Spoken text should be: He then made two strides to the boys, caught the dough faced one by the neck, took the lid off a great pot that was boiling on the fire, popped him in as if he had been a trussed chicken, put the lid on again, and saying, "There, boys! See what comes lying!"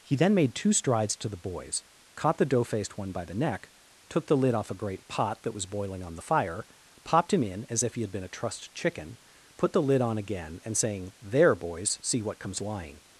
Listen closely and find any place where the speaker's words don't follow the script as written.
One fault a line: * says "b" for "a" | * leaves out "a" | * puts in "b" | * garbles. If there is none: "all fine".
all fine